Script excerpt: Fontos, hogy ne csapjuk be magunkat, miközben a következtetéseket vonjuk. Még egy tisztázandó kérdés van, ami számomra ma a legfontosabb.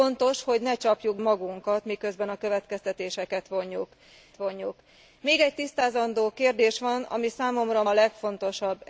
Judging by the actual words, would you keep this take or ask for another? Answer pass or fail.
fail